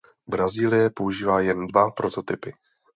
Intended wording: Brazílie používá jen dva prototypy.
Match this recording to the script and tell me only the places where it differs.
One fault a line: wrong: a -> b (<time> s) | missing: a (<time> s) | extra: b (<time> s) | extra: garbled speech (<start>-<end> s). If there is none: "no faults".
no faults